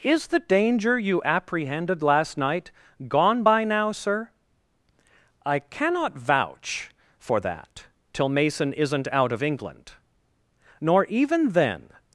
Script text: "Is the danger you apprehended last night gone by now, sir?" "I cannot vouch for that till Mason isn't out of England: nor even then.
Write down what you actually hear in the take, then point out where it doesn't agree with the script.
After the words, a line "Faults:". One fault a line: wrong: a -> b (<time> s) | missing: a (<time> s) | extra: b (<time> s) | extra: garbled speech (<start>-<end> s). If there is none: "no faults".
"Is the danger you apprehended last night gone by now, sir?" "I cannot vouch for that till Mason isn't out of England: nor even then.
Faults:
no faults